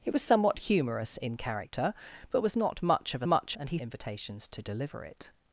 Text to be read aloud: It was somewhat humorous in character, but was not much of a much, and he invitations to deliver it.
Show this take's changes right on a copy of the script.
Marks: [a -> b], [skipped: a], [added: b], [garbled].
It was somewhat humorous in character, but was not much of a much, and he invitations to deliver it.